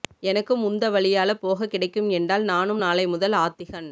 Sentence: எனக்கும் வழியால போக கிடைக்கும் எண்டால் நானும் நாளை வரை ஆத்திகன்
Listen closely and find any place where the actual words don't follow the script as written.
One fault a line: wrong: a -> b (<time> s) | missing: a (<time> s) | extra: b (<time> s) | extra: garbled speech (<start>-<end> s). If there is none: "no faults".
extra: உந்த (0.6 s)
wrong: வரை -> முதல் (3.1 s)